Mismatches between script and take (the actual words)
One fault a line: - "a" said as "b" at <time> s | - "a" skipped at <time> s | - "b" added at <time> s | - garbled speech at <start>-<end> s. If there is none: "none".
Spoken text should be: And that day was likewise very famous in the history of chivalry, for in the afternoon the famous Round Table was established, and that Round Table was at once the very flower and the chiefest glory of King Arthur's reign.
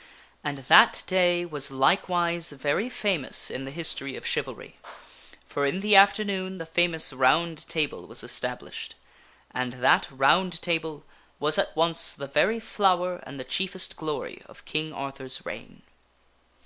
none